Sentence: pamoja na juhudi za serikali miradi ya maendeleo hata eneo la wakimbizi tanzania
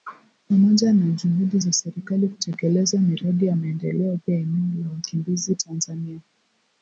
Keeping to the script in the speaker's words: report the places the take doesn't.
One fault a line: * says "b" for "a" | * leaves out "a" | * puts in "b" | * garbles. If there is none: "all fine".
* puts in "kutekeleza"
* says "pia" for "hata"